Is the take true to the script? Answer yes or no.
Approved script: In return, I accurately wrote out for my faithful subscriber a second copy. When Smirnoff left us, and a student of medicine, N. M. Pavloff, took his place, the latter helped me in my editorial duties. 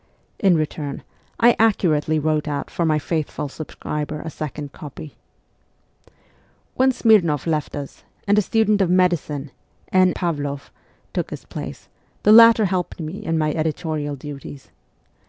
no